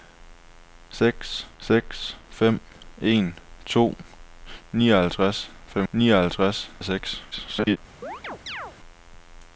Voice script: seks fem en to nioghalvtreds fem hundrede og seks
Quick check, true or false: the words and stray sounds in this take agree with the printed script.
false